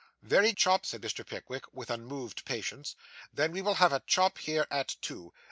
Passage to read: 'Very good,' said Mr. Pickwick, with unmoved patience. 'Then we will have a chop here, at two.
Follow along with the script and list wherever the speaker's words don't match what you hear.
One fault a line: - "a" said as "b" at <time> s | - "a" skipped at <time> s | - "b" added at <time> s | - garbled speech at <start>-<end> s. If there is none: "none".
- "good" said as "chop" at 0.5 s